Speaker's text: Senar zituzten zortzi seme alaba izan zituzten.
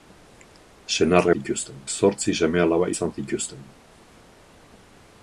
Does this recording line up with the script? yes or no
yes